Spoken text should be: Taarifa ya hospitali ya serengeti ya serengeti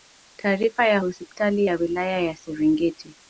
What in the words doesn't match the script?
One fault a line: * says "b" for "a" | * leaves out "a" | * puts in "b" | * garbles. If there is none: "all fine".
* says "wilaya" for "serengeti"